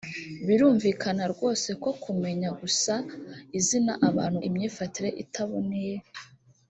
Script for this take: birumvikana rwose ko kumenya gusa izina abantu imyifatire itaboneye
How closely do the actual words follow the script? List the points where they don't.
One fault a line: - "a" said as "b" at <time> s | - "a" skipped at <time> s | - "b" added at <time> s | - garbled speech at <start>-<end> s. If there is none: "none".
none